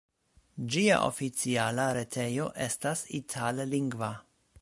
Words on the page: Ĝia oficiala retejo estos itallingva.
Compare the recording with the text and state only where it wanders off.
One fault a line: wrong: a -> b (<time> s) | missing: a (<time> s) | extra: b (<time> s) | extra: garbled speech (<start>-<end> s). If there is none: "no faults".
wrong: estos -> estas (2.7 s)